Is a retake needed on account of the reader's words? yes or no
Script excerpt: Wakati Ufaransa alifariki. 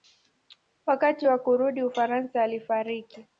yes